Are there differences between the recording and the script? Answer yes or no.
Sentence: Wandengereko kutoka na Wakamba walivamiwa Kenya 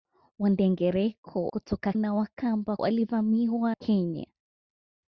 no